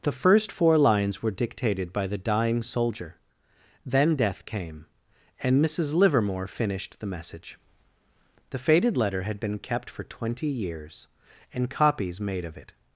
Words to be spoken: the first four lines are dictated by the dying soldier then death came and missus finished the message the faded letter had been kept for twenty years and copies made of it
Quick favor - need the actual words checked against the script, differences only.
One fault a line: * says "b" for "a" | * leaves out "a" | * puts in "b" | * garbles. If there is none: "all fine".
* says "were" for "are"
* puts in "livermore"